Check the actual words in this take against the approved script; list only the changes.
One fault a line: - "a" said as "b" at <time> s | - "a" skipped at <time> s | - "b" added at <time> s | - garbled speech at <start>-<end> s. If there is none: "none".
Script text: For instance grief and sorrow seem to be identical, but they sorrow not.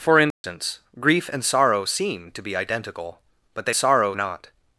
none